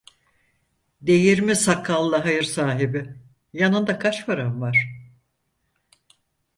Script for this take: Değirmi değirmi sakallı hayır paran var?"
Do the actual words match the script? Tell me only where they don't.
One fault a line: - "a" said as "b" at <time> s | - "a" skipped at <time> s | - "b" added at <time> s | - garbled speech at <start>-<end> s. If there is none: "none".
- "değirmi" skipped at 1.6 s
- "sahibi Yanında kaç" added at 2.4 s